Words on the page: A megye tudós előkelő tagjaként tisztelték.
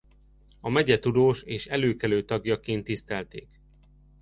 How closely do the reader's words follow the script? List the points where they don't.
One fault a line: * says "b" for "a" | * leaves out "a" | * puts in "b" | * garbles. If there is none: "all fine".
* puts in "és"